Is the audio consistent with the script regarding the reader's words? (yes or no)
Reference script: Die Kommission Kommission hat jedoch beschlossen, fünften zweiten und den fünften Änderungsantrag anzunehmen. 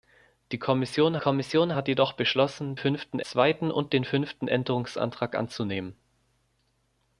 yes